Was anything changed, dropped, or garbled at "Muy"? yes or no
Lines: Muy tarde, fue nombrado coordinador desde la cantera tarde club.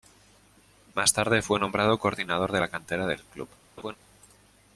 yes